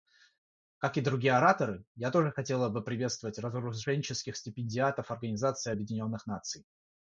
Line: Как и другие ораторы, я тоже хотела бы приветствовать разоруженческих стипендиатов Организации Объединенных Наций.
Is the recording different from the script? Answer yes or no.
no